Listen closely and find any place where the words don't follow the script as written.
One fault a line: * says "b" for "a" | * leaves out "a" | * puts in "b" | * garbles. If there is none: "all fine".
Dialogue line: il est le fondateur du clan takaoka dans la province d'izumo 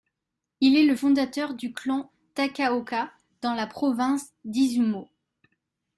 all fine